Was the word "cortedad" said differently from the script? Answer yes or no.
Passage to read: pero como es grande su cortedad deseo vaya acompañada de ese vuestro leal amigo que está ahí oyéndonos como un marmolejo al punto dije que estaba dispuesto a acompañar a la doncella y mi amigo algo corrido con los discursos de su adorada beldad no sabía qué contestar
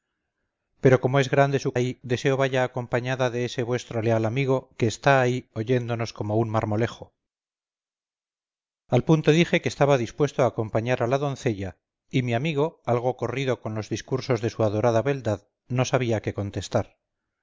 yes